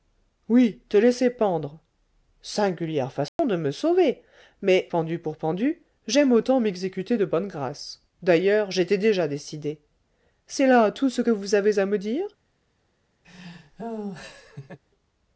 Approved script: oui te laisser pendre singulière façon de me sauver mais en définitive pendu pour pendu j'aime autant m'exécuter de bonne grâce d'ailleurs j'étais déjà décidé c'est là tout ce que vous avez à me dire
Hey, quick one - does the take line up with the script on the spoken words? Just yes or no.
no